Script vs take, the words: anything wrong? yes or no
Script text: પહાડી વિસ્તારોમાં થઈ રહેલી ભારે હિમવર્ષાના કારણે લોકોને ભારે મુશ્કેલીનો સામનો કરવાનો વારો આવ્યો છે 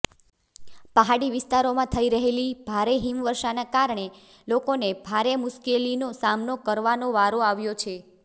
no